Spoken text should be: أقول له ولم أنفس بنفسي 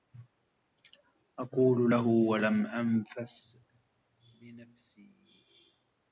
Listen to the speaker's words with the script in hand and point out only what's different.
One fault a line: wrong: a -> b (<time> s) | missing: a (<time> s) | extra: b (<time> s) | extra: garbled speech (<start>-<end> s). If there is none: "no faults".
no faults